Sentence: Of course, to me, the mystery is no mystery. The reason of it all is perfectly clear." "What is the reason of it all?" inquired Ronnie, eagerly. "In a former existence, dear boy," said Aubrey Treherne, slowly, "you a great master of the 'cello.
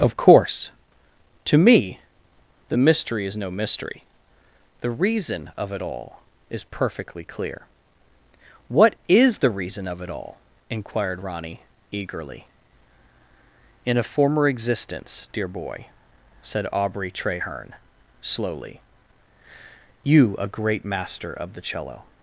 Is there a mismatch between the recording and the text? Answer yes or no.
no